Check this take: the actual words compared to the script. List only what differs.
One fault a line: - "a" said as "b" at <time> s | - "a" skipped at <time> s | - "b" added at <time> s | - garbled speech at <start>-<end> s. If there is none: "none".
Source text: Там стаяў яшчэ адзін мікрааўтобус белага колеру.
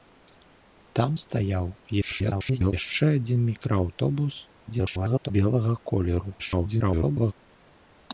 - garbled speech at 2.0-2.7 s
- garbled speech at 4.7-5.3 s
- garbled speech at 6.4-7.3 s